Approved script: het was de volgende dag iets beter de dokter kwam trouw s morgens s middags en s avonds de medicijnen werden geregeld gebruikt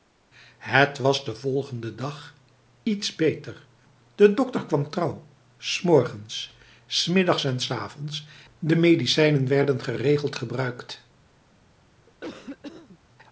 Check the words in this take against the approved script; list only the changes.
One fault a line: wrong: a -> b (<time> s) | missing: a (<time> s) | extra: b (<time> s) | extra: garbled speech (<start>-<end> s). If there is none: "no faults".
no faults